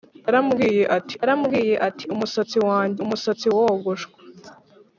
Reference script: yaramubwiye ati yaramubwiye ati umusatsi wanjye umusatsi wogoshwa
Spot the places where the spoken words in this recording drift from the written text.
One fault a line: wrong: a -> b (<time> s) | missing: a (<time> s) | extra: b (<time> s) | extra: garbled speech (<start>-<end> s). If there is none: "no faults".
no faults